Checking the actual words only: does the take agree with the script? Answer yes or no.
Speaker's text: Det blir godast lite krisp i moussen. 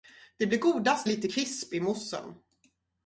yes